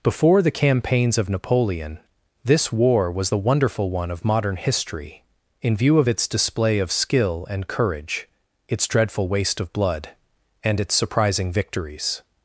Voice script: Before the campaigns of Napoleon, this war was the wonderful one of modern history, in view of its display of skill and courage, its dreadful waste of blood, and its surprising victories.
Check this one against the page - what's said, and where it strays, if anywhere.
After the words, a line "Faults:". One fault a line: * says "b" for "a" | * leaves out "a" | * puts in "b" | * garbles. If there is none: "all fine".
Before the campaigns of Napoleon, this war was the wonderful one of modern history, in view of its display of skill and courage, its dreadful waste of blood, and its surprising victories.
Faults:
all fine